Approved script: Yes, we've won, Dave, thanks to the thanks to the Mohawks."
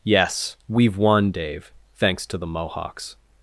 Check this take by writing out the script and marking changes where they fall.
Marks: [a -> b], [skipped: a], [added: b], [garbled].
Yes, we've won, Dave, thanks to the [skipped: thanks to the] Mohawks."